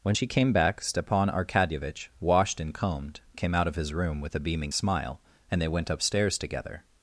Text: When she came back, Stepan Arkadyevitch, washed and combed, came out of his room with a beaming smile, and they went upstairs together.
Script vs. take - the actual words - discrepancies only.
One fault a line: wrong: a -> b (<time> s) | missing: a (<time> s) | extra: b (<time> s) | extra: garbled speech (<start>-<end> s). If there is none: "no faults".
no faults